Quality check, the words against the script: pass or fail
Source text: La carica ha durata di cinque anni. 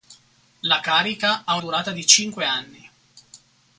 pass